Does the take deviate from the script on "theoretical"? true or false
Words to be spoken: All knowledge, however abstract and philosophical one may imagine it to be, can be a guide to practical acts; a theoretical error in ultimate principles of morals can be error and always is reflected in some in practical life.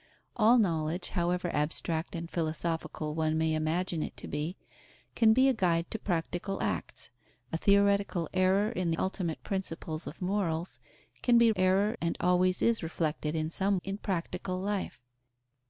false